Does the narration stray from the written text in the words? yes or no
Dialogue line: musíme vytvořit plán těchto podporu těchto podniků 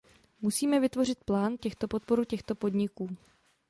no